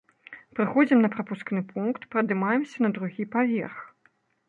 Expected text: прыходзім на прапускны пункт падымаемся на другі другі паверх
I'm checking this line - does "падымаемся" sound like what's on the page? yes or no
yes